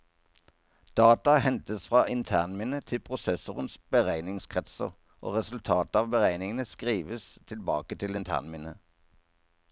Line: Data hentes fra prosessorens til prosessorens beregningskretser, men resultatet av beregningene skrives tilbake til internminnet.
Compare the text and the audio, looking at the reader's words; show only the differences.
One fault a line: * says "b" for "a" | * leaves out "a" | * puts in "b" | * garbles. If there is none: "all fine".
* says "internminnet" for "prosessorens"
* says "og" for "men"